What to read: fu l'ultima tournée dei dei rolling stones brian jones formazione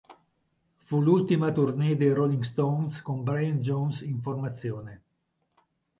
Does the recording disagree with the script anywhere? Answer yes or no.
yes